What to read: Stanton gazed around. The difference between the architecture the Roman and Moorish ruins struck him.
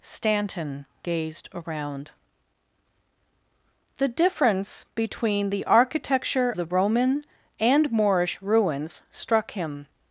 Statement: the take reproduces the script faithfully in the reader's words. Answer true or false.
true